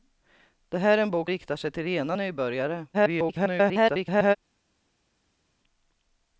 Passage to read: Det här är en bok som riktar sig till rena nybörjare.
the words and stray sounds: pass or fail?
fail